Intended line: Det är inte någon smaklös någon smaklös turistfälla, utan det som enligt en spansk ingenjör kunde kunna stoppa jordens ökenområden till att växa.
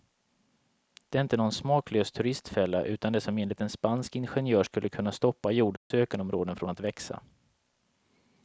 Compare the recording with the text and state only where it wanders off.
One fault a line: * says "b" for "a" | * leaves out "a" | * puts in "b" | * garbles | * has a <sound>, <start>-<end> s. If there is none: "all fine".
* leaves out "någon smaklös"
* says "skulle" for "kunde"
* has a dropout, 5.8-5.9 s
* says "från" for "till"